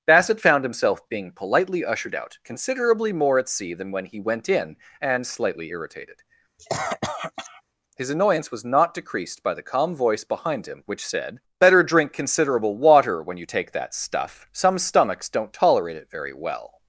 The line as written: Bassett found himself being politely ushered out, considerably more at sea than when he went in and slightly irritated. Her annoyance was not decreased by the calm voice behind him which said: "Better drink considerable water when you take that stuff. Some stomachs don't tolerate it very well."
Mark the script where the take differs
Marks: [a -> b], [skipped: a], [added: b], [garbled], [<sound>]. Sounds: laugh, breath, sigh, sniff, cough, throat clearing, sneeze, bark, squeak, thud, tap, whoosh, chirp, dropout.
Bassett found himself being politely ushered out, considerably more at sea than when he went in and slightly irritated. [cough] [Her -> His] annoyance was not decreased by the calm voice behind him which said: "Better drink considerable water when you take that stuff. Some stomachs don't tolerate it very well."